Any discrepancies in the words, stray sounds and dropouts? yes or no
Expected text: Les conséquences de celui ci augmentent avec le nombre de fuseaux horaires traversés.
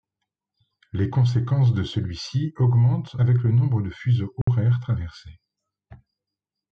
yes